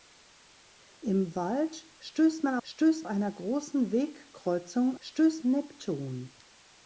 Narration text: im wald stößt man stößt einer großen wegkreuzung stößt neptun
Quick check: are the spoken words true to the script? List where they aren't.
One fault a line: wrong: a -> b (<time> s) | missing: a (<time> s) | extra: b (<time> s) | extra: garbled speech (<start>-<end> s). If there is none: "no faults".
no faults